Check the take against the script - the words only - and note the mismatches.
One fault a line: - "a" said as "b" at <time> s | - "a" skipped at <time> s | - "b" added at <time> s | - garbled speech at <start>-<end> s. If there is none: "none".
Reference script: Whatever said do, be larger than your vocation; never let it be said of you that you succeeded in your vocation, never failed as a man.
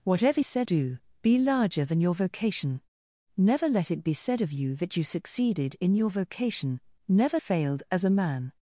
none